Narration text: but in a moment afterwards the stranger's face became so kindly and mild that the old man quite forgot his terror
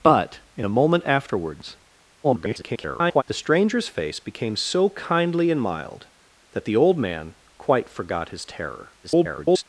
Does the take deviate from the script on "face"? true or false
false